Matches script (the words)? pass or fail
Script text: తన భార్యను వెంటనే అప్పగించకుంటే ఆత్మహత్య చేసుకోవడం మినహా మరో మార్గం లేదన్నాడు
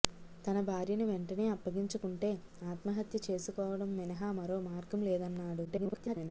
fail